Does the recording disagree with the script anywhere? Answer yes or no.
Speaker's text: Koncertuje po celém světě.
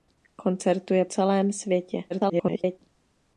yes